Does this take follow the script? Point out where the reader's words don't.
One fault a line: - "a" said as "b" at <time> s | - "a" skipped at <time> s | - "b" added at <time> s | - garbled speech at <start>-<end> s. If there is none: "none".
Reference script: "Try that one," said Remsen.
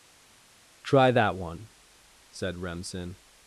none